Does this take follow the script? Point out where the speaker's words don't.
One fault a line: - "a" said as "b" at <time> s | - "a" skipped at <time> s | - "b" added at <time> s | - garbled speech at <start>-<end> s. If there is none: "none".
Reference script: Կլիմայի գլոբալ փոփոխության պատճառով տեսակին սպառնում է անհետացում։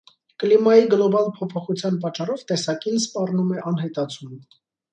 none